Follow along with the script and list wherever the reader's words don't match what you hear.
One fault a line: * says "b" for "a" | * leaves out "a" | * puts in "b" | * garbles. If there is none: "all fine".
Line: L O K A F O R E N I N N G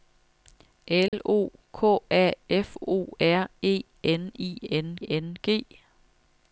all fine